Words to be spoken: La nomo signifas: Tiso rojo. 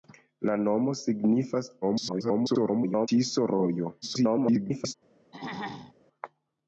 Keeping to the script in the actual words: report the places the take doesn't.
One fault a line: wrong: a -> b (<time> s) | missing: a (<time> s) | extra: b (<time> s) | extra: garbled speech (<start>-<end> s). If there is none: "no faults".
extra: garbled speech (1.8-3.1 s)
extra: garbled speech (4.0-4.9 s)